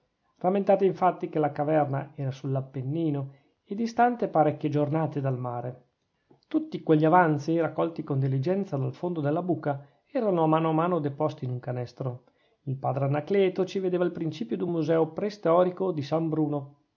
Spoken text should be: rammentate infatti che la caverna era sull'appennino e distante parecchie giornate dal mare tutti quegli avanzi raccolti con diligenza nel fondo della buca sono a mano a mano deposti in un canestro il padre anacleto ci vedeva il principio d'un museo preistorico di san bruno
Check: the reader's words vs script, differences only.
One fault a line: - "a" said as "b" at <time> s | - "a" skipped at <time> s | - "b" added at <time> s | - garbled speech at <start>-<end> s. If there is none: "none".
- "nel" said as "dal" at 8.8 s
- "sono" said as "erano" at 10.1 s